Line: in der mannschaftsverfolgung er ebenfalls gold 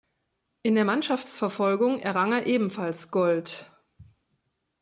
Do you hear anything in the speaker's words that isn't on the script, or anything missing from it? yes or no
yes